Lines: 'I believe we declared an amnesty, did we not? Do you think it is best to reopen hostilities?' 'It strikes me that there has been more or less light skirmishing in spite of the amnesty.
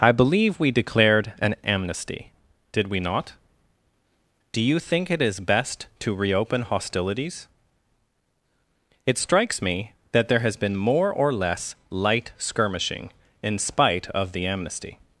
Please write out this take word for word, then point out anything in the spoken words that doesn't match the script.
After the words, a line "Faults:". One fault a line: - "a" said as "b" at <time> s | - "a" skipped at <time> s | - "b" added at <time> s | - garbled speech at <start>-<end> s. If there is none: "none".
'I believe we declared an amnesty, did we not? Do you think it is best to reopen hostilities?' 'It strikes me that there has been more or less light skirmishing in spite of the amnesty.
Faults:
none